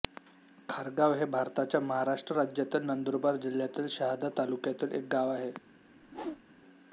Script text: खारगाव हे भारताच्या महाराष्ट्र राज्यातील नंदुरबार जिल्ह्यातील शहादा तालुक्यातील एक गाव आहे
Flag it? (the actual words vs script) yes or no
no